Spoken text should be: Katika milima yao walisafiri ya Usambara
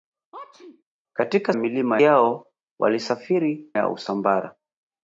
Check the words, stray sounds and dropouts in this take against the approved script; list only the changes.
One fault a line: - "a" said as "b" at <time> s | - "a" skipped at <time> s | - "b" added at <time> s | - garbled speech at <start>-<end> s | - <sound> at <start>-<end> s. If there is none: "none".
- sneeze at 0.3-0.8 s